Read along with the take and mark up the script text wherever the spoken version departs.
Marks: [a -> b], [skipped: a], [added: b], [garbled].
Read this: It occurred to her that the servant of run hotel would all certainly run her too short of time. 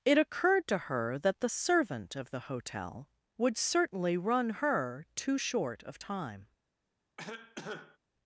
It occurred to her that the servant of [run -> the] hotel would [skipped: all] certainly run her too short of time.